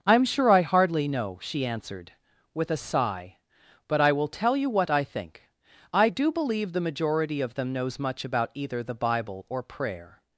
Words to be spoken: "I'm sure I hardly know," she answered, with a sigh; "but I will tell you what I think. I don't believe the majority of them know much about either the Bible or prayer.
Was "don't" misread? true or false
true